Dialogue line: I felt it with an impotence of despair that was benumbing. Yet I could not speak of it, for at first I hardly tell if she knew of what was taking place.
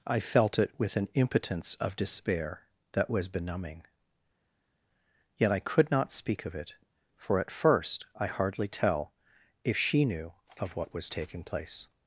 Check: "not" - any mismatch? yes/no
no